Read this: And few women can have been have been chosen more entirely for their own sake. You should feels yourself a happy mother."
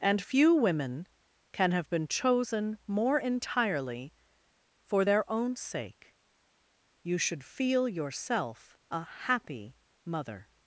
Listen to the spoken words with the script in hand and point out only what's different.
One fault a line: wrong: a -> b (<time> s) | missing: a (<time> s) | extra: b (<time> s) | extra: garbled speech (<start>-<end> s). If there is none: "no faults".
missing: have been (2.1 s)
wrong: feels -> feel (7.4 s)